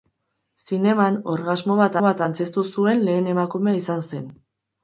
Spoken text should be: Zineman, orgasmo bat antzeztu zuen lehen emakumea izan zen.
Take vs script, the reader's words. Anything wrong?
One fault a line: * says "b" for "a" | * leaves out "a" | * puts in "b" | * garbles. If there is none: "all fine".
* puts in "bat"